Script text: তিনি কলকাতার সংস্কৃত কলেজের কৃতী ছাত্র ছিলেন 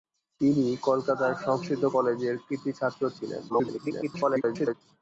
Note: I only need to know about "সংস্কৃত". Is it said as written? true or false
true